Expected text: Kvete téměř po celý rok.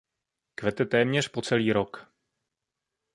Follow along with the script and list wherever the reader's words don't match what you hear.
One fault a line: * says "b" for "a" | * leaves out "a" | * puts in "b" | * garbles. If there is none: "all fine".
all fine